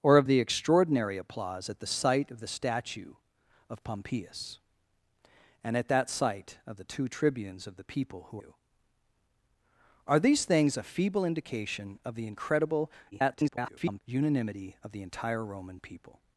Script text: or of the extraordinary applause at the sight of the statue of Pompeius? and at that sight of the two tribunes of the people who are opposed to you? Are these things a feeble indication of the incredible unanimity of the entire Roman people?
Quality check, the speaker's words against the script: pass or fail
fail